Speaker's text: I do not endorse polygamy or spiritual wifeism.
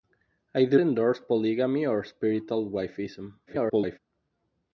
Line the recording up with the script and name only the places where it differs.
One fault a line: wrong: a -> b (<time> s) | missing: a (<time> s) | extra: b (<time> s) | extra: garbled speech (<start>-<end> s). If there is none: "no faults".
missing: not (0.8 s)
extra: garbled speech (3.5-4.0 s)